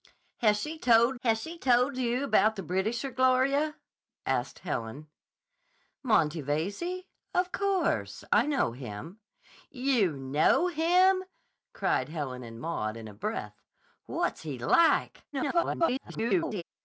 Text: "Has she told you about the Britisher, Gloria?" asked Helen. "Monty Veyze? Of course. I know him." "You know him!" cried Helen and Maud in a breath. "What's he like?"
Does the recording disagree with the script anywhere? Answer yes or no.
yes